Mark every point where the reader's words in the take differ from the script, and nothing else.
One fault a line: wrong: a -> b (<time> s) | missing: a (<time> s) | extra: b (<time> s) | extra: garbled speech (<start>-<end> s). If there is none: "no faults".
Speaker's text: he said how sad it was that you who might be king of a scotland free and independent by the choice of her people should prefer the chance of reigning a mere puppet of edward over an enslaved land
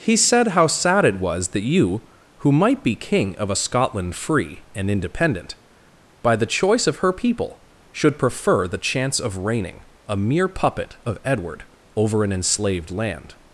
no faults